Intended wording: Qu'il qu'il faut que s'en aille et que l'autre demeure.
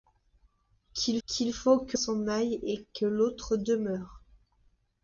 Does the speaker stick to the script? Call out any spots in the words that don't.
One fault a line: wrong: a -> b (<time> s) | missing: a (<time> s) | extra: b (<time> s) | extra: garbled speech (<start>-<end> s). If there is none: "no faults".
no faults